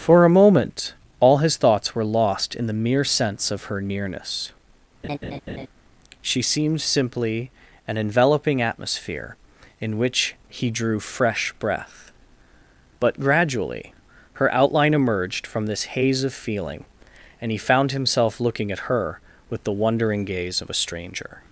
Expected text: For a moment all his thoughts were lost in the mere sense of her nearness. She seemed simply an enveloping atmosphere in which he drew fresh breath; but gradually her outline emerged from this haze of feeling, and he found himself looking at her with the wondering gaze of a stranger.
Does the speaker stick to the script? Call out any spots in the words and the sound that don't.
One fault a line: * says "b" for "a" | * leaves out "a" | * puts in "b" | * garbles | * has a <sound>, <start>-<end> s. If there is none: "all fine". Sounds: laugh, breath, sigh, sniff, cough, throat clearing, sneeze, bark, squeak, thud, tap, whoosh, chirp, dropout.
* has a laugh, 5.0-5.7 s